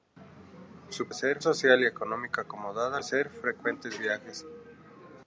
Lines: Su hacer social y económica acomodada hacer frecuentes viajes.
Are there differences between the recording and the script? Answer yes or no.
no